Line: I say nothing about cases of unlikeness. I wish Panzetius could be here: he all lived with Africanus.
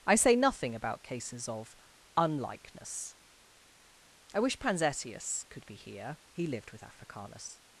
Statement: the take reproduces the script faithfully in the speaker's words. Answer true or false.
false